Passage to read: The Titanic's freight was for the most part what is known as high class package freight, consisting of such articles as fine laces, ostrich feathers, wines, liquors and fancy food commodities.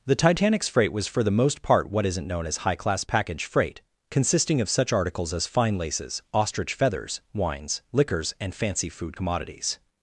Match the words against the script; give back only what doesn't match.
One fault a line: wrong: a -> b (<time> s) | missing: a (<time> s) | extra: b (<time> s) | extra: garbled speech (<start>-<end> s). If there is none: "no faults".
wrong: is -> isn't (2.1 s)